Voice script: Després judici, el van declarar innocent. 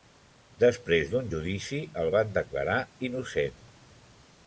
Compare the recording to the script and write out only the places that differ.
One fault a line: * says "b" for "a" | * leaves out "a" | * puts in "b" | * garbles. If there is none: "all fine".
* puts in "d'un"